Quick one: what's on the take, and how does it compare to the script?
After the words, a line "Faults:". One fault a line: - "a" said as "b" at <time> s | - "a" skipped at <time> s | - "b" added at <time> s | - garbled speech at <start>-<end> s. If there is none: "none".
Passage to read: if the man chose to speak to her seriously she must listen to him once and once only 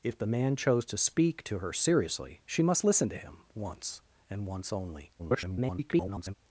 if the man chose to speak to her seriously she must listen to him once and once only [garbled]
Faults:
- garbled speech at 5.2-6.3 s